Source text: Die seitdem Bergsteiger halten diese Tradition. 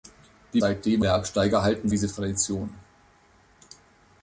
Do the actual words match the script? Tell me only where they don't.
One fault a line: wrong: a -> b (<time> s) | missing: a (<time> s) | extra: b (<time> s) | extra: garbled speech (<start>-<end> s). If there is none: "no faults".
no faults